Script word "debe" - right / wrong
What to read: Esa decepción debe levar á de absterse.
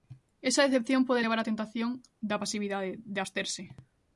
wrong